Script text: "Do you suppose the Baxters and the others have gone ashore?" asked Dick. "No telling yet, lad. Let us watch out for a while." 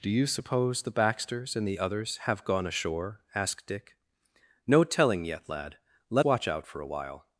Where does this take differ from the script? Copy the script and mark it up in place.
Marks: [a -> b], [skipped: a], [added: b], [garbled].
"Do you suppose the Baxters and the others have gone ashore?" asked Dick. "No telling yet, lad. Let [skipped: us] watch out for a while."